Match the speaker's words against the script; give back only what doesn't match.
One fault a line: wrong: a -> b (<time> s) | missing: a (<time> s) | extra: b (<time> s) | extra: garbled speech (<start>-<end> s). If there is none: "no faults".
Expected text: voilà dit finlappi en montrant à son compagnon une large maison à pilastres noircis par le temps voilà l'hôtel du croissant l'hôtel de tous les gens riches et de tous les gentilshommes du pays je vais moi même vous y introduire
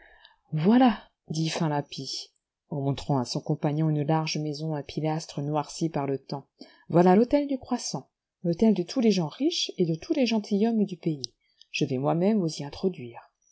no faults